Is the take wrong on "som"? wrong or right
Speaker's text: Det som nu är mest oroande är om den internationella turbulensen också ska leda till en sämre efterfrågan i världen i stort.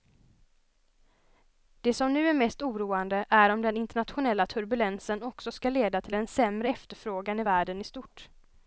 right